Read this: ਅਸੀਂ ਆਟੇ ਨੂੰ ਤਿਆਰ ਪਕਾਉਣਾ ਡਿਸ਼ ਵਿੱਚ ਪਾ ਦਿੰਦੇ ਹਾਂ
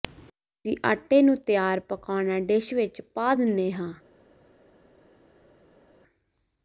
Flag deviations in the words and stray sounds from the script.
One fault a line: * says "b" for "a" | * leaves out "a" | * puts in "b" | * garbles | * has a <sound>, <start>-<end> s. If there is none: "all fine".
all fine